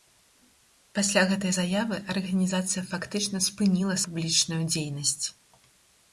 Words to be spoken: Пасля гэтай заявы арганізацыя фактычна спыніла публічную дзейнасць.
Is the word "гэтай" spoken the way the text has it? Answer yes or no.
yes